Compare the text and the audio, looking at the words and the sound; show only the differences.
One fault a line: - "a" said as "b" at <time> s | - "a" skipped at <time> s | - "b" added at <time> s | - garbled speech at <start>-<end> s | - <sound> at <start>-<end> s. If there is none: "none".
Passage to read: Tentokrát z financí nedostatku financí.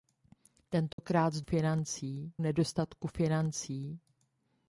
- dropout at 0.9-1.0 s